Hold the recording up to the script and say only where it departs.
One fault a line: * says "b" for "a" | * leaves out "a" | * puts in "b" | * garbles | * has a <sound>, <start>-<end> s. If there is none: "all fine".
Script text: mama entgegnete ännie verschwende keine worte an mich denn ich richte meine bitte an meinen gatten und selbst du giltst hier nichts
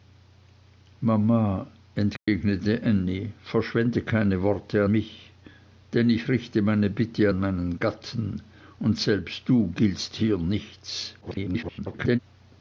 * has a dropout, 2.2-2.3 s
* leaves out "an"
* garbles